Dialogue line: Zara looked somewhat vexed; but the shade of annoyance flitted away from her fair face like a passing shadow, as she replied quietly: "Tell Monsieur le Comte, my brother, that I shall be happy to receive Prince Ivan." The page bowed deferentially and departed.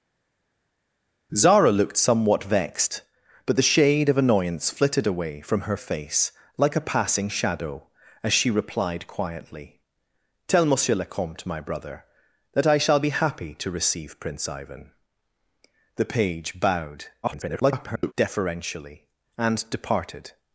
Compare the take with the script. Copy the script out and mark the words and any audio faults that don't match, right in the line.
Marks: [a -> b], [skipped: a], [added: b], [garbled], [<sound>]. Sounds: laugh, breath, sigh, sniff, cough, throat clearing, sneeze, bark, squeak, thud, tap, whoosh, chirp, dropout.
Zara looked somewhat vexed; but the shade of annoyance flitted away from her [skipped: fair] face like a passing shadow, as she replied quietly: "Tell Monsieur le Comte, my brother, that I shall be happy to receive Prince Ivan." The page bowed [garbled] deferentially and departed.